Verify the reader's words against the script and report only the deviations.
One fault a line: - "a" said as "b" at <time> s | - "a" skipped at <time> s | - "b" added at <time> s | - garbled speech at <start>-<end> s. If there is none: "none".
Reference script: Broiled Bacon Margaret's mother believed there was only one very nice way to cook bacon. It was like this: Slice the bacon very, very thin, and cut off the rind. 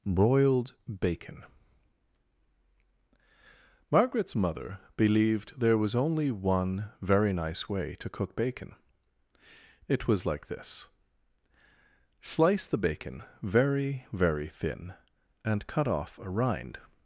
- "the" said as "a" at 16.2 s